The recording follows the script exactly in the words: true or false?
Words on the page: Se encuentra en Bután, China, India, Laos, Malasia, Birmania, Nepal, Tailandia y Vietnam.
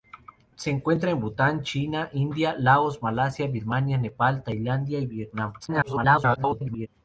false